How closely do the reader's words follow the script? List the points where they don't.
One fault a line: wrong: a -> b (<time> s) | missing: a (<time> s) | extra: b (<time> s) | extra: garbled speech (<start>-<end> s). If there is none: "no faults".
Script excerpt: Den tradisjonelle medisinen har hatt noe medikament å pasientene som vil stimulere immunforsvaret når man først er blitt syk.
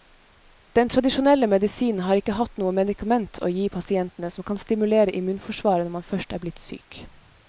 extra: ikke (2.2 s)
extra: gi (3.6 s)
wrong: vil -> kan (4.5 s)